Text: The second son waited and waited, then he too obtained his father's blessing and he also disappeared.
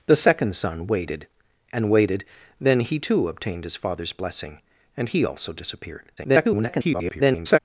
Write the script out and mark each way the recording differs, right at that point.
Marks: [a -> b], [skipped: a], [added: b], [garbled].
The second son waited and waited, then he too obtained his father's blessing and he also disappeared. [garbled]